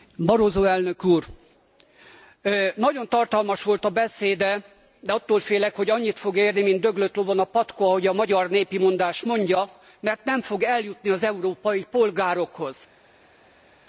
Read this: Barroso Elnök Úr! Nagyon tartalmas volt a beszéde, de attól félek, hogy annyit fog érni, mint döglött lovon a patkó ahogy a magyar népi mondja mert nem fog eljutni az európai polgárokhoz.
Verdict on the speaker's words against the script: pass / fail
fail